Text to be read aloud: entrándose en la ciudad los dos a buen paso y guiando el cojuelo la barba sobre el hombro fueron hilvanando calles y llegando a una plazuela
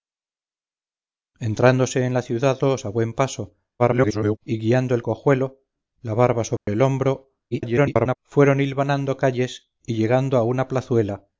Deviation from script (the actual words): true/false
true